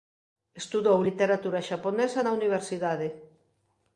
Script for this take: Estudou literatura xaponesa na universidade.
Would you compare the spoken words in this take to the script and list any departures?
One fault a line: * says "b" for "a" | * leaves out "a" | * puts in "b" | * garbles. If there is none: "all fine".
all fine